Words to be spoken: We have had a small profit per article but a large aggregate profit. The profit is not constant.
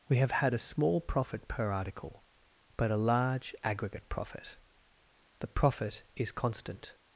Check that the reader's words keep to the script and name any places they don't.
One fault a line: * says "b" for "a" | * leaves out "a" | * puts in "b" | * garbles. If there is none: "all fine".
* leaves out "not"